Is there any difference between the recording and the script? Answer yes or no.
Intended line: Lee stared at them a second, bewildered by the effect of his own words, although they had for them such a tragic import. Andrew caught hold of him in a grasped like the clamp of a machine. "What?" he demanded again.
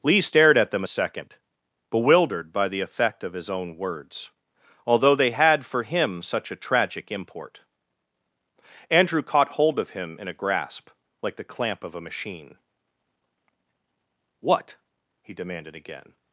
yes